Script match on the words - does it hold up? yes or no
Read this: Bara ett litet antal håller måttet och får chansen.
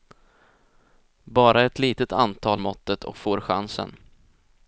no